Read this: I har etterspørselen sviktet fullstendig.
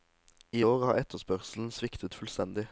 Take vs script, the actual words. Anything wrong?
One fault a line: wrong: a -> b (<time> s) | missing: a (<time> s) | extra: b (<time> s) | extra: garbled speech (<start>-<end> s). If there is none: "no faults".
extra: år (0.6 s)